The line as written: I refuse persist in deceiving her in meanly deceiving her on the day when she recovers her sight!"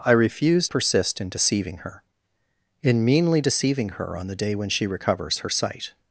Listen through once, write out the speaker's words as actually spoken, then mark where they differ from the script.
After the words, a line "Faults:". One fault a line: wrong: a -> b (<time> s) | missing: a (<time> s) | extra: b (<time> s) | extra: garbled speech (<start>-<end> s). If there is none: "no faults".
I refuse persist in deceiving her in meanly deceiving her on the day when she recovers her sight!"
Faults:
no faults